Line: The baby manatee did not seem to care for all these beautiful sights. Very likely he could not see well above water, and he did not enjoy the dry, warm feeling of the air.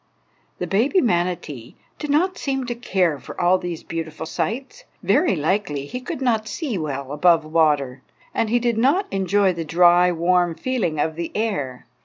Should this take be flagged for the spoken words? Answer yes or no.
no